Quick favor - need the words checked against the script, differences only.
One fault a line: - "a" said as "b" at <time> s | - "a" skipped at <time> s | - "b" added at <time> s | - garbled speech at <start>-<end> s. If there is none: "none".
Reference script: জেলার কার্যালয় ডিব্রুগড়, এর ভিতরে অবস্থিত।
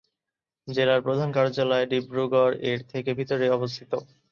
- "প্রধান" added at 1.1 s
- "থেকে" added at 2.9 s